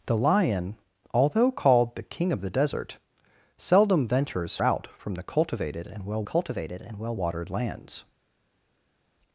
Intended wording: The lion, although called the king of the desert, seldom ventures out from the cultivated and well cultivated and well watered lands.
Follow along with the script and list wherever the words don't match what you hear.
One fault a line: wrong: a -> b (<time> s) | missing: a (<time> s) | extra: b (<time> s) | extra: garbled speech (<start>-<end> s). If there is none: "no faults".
no faults